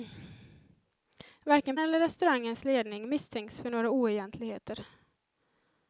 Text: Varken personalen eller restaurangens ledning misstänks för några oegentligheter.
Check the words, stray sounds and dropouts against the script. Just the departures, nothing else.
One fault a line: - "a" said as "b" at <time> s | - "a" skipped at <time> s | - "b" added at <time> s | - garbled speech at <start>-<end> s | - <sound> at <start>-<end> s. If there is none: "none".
- "personalen" skipped at 1.8 s